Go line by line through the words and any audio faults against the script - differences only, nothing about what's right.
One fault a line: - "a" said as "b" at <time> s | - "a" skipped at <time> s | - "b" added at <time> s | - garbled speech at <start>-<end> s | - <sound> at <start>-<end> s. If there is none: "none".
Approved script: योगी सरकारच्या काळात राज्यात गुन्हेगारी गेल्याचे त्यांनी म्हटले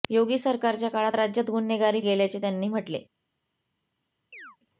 - chirp at 4.3-4.6 s